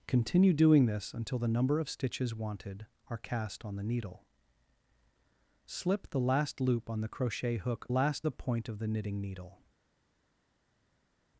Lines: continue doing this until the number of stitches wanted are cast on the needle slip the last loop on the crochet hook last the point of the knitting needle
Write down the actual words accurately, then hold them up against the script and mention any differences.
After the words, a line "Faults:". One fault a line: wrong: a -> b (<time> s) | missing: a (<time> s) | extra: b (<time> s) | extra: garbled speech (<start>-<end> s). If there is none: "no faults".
continue doing this until the number of stitches wanted are cast on the needle slip the last loop on the crochet hook last the point of the knitting needle
Faults:
no faults